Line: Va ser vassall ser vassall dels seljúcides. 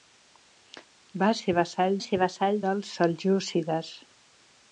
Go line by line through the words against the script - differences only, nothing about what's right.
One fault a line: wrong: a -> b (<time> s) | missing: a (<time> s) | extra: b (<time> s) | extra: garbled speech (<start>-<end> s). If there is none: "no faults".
no faults